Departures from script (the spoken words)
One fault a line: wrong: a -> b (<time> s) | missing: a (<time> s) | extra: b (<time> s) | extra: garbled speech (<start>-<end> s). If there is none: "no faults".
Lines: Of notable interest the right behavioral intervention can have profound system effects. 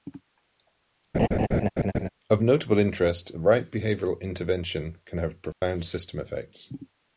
no faults